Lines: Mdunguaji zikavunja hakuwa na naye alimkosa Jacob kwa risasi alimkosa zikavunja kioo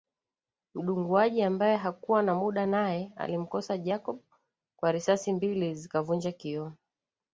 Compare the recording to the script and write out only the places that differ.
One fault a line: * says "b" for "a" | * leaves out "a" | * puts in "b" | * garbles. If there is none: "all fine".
* says "ambaye" for "zikavunja"
* puts in "muda"
* says "mbili" for "alimkosa"